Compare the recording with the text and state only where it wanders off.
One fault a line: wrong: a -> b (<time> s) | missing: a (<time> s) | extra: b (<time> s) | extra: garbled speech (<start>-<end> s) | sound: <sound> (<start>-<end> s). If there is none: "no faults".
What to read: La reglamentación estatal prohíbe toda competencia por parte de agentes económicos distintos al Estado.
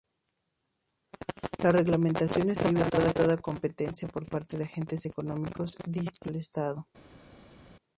missing: prohíbe (3.1 s)